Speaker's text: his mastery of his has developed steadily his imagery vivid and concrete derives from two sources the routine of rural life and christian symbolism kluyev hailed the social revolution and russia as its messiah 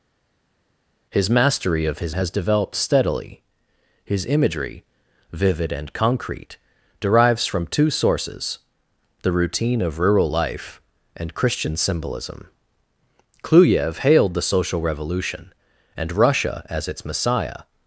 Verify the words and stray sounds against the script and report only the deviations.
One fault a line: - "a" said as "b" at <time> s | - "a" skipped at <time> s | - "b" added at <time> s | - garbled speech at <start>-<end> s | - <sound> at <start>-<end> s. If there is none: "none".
none